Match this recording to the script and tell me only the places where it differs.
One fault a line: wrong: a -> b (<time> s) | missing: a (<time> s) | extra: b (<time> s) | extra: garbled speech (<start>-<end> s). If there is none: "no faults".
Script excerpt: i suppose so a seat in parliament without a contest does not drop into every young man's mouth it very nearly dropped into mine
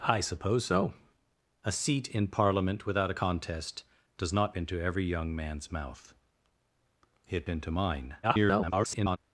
missing: drop (4.5 s)
missing: very nearly dropped (7.5 s)
extra: garbled speech (8.2-9.2 s)